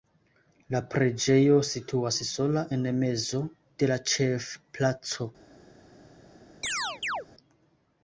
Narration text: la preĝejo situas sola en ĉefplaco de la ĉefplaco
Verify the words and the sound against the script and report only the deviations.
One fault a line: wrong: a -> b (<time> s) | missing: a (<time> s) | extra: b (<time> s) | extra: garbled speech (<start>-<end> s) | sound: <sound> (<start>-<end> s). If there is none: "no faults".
wrong: ĉefplaco -> mezo (3.0 s)
sound: chirp (6.6-7.3 s)